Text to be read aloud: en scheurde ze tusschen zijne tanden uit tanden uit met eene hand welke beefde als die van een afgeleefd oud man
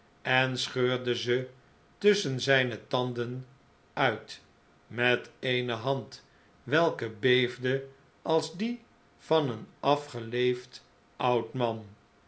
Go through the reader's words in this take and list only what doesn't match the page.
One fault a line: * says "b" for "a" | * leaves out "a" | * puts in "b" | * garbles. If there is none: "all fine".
* leaves out "tanden uit"